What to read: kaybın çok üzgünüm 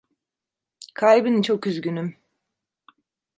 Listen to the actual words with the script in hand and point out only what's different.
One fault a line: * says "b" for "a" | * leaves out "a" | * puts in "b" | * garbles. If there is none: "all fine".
all fine